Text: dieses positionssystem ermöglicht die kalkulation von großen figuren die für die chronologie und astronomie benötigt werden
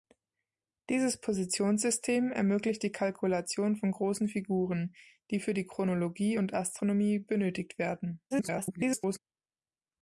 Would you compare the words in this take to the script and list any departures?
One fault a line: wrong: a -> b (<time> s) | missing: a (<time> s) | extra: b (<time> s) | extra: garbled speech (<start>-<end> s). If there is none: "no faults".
extra: garbled speech (8.3-9.2 s)